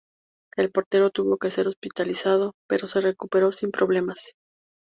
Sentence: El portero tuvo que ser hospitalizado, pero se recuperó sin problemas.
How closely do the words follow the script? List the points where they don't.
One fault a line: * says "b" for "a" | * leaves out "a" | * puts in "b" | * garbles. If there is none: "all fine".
all fine